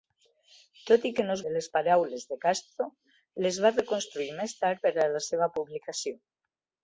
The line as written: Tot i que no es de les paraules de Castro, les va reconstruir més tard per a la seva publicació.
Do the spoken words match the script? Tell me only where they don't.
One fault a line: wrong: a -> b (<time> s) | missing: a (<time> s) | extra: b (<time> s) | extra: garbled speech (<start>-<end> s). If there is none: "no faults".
no faults